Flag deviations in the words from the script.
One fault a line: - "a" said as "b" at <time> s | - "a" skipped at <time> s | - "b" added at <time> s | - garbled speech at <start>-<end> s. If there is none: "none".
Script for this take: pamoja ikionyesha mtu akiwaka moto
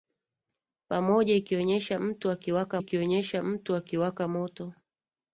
- "ikionyesha mtu akiwaka" added at 2.8 s